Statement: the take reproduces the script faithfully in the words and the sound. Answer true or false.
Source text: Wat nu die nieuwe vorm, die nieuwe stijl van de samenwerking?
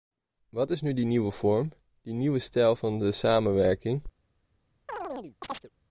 false